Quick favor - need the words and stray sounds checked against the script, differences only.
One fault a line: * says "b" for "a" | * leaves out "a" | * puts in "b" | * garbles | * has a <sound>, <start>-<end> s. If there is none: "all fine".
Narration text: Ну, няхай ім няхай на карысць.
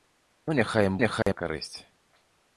* has a dropout, 1.2-1.3 s